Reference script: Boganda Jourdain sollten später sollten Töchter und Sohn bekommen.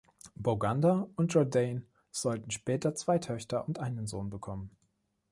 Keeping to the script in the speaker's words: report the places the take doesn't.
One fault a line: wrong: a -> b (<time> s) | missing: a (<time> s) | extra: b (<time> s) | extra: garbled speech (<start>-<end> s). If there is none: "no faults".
extra: und (1.1 s)
wrong: sollten -> zwei (3.0 s)
extra: einen (3.8 s)